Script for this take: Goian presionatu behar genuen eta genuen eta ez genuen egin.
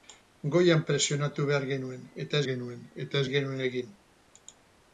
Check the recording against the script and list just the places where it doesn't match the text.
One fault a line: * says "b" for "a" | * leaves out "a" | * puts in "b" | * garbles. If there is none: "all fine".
all fine